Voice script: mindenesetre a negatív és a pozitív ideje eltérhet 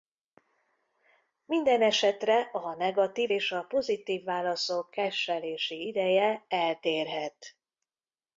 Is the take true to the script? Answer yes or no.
no